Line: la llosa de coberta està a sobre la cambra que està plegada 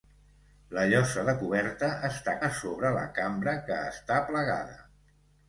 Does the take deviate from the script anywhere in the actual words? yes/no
no